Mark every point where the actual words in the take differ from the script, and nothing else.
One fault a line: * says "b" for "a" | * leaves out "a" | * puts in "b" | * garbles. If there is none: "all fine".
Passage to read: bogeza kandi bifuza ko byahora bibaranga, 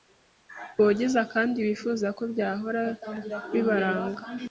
all fine